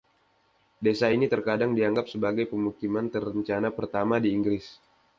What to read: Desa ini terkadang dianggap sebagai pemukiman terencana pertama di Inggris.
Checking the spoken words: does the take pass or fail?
pass